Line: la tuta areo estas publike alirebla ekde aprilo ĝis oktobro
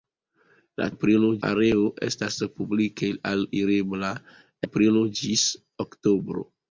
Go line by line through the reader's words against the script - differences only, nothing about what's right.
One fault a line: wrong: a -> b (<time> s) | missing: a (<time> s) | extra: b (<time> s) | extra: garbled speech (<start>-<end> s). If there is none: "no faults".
wrong: tuta -> aprilo (0.9 s)
missing: ekde (4.1 s)